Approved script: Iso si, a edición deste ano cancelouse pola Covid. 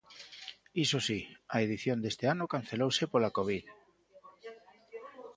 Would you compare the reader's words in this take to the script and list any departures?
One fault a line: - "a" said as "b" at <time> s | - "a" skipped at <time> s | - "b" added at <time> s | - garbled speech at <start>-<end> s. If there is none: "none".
none